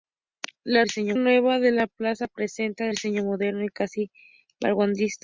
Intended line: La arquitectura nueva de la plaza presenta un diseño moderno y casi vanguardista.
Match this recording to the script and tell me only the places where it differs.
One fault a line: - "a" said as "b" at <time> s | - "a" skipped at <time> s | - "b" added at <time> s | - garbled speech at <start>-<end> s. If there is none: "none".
- "arquitectura" said as "diseño" at 0.8 s
- "un" skipped at 2.8 s